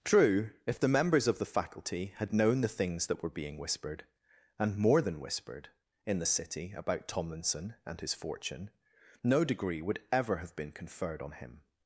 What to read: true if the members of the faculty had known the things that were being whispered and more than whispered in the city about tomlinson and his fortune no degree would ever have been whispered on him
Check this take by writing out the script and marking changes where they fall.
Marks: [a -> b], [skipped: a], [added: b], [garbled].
true if the members of the faculty had known the things that were being whispered and more than whispered in the city about tomlinson and his fortune no degree would ever have been [whispered -> conferred] on him